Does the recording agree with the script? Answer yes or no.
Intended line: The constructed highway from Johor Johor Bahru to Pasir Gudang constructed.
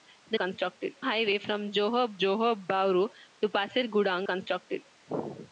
yes